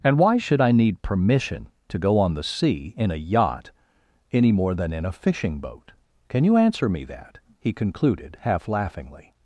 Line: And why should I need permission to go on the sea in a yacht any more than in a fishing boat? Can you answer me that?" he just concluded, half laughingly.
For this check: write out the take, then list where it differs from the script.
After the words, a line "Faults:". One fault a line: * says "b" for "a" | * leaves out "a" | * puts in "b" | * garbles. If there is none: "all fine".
And why should I need permission to go on the sea in a yacht any more than in a fishing boat? Can you answer me that?" he concluded, half laughingly.
Faults:
* leaves out "just"